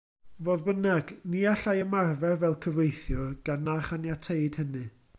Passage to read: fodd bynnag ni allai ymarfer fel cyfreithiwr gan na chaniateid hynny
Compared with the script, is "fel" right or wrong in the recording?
right